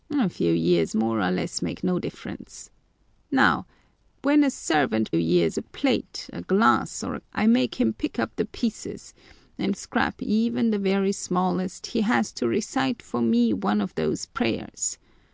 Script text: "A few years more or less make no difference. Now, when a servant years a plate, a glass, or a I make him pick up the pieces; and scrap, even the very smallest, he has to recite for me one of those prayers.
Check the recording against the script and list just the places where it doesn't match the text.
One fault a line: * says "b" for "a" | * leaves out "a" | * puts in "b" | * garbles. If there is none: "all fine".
all fine